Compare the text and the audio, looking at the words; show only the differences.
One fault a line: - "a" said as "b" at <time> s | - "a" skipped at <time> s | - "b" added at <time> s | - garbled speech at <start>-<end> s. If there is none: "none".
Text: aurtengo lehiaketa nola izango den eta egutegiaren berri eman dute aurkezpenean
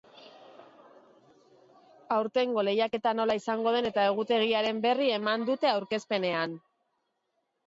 none